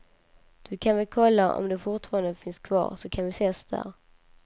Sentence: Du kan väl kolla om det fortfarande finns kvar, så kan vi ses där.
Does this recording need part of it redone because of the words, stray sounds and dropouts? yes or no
no